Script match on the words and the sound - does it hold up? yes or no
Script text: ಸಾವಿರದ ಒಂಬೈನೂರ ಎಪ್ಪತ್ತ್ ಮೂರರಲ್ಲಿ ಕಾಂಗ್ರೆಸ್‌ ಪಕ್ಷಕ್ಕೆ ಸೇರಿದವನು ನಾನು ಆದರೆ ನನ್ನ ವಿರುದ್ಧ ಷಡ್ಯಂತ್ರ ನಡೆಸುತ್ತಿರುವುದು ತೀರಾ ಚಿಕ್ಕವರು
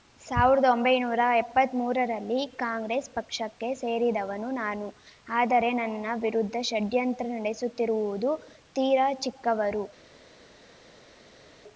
yes